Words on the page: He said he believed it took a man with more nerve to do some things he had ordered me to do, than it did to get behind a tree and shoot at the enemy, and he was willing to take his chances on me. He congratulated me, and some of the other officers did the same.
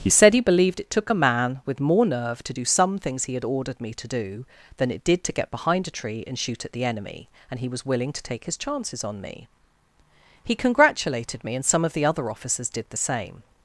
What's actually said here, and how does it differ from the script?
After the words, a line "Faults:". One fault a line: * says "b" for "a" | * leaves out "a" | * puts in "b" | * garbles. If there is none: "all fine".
He said he believed it took a man with more nerve to do some things he had ordered me to do, than it did to get behind a tree and shoot at the enemy, and he was willing to take his chances on me. He congratulated me, and some of the other officers did the same.
Faults:
all fine